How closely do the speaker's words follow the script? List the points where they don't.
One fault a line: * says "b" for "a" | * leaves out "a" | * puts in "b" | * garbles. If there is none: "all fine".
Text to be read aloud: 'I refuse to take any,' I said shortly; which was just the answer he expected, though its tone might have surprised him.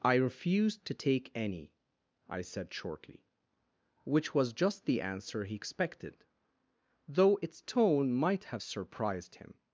all fine